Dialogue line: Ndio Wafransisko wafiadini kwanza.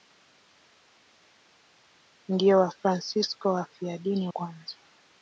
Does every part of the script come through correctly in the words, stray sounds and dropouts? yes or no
yes